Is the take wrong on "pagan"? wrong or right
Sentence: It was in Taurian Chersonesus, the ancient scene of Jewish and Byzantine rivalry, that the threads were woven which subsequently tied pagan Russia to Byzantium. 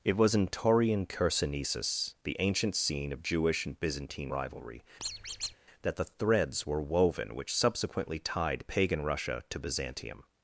right